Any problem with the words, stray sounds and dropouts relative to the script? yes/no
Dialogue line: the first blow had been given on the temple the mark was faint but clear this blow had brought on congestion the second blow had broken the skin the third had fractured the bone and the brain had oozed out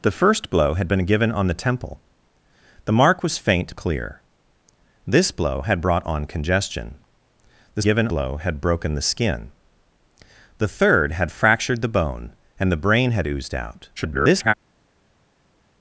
yes